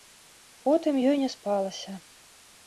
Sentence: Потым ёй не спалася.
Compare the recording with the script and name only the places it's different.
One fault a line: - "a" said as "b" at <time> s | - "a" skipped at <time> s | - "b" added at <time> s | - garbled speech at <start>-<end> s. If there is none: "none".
none